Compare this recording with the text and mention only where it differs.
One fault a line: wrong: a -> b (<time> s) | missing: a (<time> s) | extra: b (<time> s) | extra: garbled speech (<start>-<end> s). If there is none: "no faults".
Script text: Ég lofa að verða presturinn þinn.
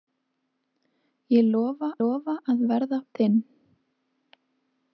extra: lofa (2.0 s)
missing: presturinn (3.0 s)